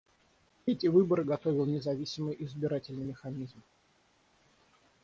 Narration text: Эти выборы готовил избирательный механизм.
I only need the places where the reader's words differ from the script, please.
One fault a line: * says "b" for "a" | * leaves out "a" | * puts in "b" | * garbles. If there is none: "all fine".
* puts in "независимый"